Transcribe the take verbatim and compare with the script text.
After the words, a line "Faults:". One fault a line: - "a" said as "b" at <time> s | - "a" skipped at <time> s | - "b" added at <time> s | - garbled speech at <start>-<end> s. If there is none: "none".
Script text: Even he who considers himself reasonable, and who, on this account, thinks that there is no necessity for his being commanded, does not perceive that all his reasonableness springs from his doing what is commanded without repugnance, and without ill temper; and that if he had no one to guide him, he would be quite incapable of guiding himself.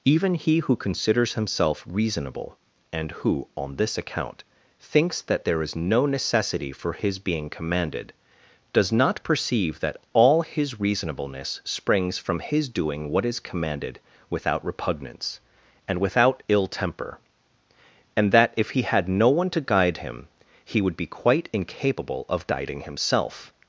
Even he who considers himself reasonable, and who, on this account, thinks that there is no necessity for his being commanded, does not perceive that all his reasonableness springs from his doing what is commanded without repugnance, and without ill temper; and that if he had no one to guide him, he would be quite incapable of guiding himself.
Faults:
none